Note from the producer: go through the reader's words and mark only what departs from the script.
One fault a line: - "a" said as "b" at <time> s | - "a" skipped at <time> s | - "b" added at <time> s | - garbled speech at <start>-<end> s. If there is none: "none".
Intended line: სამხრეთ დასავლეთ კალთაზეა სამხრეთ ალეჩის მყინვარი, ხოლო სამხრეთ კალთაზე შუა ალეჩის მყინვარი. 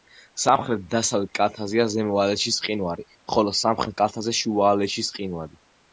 - "სამხრეთ" said as "ზემო" at 1.9 s